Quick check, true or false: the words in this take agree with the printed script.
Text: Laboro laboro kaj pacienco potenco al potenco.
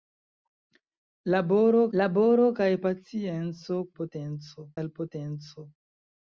true